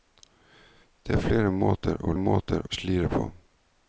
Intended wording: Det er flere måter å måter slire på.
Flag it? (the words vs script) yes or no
no